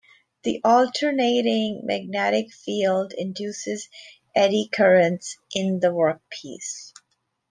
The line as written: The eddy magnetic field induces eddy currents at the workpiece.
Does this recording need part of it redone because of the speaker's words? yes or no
yes